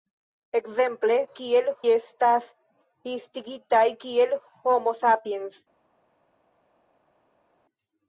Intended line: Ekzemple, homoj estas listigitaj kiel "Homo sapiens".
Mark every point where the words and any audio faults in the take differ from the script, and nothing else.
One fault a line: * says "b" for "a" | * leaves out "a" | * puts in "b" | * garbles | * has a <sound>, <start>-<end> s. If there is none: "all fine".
* says "kiel" for "homoj"